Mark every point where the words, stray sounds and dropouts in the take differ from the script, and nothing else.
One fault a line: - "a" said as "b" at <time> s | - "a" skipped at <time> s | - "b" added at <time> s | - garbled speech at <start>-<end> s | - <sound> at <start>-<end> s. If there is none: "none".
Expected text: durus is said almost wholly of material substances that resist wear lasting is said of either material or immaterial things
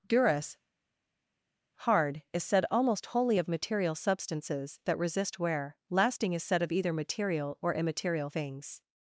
- "hard" added at 1.9 s